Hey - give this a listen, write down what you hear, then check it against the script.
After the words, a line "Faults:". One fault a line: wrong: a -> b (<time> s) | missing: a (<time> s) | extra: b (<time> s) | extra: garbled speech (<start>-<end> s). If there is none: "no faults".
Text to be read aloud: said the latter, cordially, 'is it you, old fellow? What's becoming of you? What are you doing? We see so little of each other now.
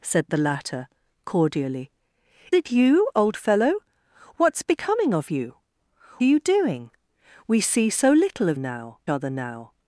said the latter, cordially, 'it you, old fellow? What's becoming of you? Are you doing? We see so little of now other now.
Faults:
missing: is (1.9 s)
missing: What (5.6 s)
wrong: each -> now (8.6 s)